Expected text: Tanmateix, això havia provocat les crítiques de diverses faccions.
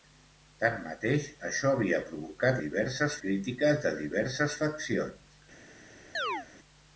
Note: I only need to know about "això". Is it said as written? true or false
true